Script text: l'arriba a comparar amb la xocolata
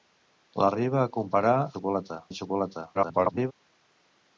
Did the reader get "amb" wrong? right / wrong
wrong